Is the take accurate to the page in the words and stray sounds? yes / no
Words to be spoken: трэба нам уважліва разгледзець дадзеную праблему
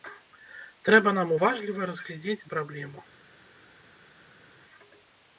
no